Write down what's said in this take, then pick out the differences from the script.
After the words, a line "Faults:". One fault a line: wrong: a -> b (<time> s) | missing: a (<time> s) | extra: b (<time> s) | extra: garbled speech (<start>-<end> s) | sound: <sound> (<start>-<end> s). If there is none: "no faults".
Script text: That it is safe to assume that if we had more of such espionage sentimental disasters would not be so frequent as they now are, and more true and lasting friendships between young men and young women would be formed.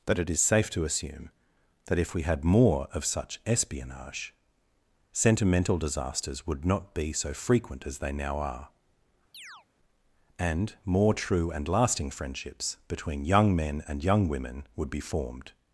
That it is safe to assume that if we had more of such espionage sentimental disasters would not be so frequent as they now are, and more true and lasting friendships between young men and young women would be formed.
Faults:
sound: chirp (9.3-9.7 s)